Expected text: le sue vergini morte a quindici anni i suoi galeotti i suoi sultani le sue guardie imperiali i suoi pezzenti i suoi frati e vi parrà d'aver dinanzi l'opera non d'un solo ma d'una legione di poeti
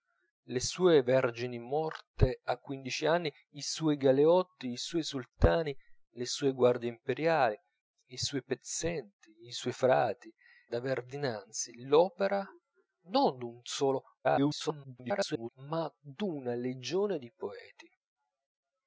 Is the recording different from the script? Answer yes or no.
yes